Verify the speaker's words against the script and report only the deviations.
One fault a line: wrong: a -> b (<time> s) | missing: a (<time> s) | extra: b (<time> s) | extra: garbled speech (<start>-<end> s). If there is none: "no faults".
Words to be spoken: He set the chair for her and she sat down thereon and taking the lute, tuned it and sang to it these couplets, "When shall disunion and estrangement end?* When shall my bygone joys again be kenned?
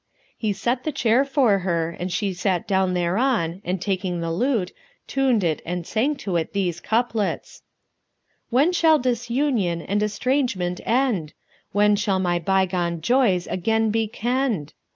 no faults